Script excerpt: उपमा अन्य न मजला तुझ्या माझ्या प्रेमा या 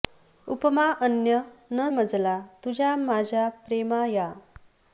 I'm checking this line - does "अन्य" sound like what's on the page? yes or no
yes